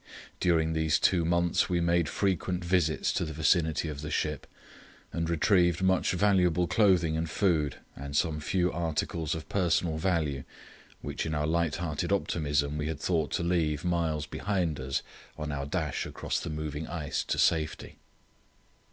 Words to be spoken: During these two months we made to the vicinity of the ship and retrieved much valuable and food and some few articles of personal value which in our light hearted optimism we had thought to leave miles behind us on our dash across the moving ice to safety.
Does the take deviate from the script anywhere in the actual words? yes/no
yes